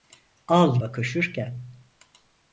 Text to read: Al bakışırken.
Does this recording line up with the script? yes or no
yes